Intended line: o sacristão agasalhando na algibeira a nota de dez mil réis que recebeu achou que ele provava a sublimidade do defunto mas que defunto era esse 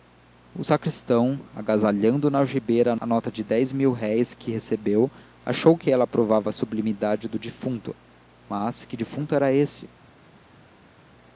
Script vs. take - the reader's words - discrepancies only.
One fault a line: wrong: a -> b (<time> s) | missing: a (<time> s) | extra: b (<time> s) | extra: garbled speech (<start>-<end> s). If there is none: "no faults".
wrong: ele -> ela (5.9 s)